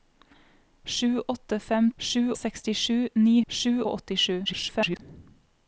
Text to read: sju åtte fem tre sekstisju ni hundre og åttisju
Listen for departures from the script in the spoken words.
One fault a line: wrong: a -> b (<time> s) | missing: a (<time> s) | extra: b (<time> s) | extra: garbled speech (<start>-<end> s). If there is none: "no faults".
wrong: tre -> sju (2.0 s)
wrong: hundre -> sju (3.5 s)
extra: garbled speech (4.5-5.0 s)